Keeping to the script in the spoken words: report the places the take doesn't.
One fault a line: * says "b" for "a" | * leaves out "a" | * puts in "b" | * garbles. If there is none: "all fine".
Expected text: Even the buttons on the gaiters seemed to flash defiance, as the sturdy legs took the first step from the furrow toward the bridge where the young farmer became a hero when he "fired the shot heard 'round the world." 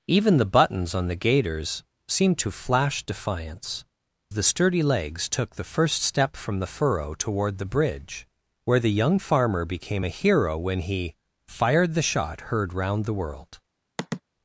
* leaves out "as"